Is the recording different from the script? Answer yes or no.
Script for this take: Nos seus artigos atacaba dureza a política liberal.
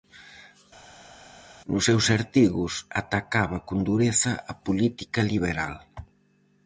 yes